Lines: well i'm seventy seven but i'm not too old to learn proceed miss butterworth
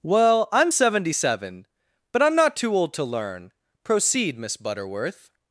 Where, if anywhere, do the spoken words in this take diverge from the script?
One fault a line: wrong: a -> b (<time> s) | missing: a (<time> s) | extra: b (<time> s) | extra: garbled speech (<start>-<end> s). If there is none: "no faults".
no faults